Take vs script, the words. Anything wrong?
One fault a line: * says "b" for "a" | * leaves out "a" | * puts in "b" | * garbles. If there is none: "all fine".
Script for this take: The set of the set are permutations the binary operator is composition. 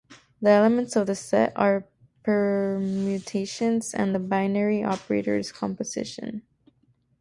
* says "elements" for "set"
* puts in "and"